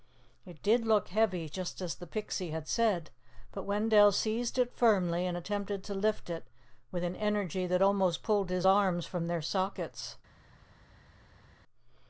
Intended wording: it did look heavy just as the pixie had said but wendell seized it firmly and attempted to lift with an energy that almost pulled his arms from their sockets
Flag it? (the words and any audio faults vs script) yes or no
yes